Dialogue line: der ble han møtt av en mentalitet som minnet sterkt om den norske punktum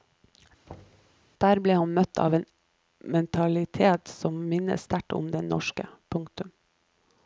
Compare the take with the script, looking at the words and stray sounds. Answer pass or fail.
fail